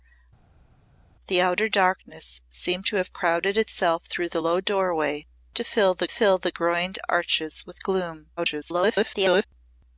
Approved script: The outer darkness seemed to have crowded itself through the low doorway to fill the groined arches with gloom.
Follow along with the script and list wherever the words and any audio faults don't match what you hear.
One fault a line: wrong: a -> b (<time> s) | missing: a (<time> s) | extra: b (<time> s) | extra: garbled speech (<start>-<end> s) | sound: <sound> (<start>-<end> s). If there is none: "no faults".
extra: fill the (6.1 s)
extra: garbled speech (8.4-9.5 s)